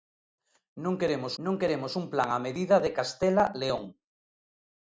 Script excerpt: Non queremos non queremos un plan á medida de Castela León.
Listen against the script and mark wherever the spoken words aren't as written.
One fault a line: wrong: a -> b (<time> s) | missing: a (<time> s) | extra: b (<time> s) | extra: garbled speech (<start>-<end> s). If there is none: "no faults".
no faults